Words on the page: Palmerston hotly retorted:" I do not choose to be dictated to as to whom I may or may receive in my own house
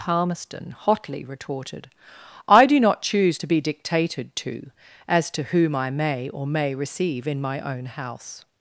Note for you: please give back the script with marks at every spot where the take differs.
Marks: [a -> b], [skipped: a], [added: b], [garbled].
Palmerston hotly retorted:" I do not choose to be dictated to as to whom I may or may receive in my own house